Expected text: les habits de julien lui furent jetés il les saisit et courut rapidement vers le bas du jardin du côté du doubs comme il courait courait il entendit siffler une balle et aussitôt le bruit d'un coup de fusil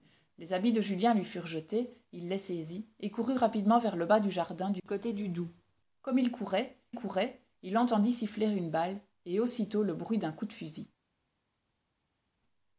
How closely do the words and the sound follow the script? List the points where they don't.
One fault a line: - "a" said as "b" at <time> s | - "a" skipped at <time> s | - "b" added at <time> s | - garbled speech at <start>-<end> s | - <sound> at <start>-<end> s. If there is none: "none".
none